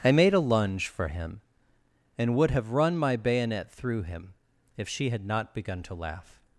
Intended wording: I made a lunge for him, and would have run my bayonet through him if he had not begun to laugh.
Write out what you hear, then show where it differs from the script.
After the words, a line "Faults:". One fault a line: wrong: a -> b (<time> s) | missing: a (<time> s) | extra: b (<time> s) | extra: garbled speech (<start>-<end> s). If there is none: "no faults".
I made a lunge for him, and would have run my bayonet through him if she had not begun to laugh.
Faults:
wrong: he -> she (4.9 s)